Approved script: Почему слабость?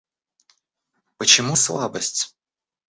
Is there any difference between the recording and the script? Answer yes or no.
no